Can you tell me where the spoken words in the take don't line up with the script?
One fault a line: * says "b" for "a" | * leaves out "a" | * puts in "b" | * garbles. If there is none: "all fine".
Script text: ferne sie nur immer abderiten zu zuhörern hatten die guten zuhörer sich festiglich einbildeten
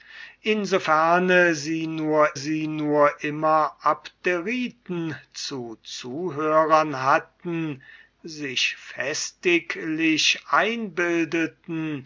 * puts in "sie nur"
* leaves out "die guten zuhörer"